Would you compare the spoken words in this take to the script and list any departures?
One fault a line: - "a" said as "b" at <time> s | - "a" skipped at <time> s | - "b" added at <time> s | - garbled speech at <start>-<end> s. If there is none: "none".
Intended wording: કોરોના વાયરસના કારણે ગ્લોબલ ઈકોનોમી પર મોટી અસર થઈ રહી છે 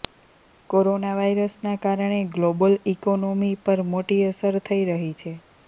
none